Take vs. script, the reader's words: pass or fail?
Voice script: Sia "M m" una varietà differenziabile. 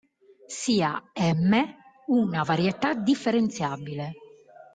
fail